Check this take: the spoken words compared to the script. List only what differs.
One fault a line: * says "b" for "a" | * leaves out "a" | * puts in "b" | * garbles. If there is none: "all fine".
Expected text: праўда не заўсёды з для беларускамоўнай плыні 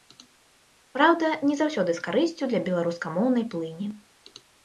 * puts in "карысцю"